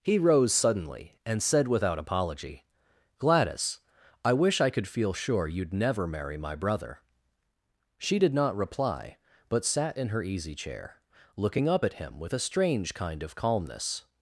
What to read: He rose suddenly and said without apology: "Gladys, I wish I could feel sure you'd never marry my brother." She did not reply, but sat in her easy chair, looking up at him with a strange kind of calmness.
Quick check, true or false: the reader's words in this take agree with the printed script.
true